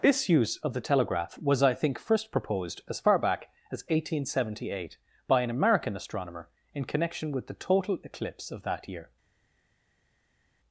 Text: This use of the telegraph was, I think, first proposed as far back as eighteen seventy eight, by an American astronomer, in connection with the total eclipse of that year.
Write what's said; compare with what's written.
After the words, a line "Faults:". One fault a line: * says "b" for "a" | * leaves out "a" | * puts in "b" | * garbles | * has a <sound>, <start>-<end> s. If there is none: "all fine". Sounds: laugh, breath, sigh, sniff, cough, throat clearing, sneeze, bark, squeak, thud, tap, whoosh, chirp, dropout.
This use of the telegraph was, I think, first proposed as far back as eighteen seventy eight, by an American astronomer, in connection with the total eclipse of that year.
Faults:
all fine